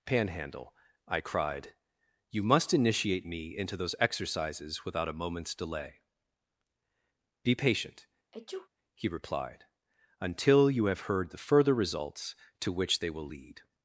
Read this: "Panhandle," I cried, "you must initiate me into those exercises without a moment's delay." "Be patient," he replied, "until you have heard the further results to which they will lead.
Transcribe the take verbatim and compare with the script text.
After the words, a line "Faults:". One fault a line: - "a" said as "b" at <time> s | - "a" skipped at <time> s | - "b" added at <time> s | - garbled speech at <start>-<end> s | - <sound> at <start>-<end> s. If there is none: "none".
"Panhandle," I cried, "you must initiate me into those exercises without a moment's delay." "Be patient," he replied, "until you have heard the further results to which they will lead.
Faults:
- sneeze at 8.3-8.7 s